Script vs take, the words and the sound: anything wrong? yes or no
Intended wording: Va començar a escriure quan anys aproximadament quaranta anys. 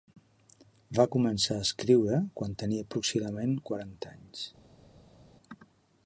yes